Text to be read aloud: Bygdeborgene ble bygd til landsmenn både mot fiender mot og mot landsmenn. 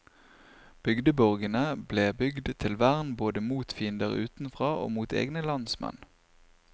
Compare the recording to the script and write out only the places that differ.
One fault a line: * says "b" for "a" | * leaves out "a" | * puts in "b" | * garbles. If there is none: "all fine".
* says "vern" for "landsmenn"
* says "utenfra" for "mot"
* puts in "egne"